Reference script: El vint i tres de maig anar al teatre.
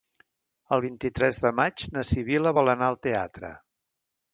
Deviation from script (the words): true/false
true